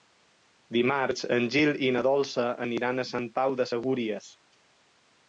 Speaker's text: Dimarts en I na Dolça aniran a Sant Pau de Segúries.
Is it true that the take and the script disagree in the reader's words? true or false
true